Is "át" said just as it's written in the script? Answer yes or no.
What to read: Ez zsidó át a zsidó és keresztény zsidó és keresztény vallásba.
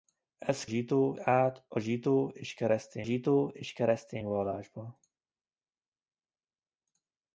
yes